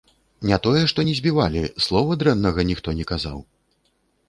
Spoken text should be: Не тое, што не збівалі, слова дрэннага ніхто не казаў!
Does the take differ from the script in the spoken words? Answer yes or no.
no